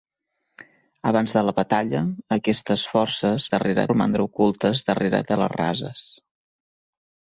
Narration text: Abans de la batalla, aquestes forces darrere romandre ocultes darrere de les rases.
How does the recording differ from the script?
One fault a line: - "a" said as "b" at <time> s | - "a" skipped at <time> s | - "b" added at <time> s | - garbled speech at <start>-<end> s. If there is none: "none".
none